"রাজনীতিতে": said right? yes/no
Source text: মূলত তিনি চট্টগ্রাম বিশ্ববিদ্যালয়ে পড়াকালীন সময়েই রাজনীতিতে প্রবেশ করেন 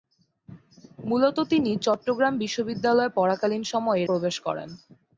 no